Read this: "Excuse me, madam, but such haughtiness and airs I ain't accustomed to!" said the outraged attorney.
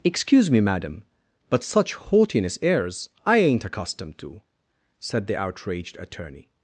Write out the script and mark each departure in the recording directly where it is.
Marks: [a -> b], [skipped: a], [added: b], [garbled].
"Excuse me, madam, but such haughtiness [skipped: and] airs I ain't accustomed to!" said the outraged attorney.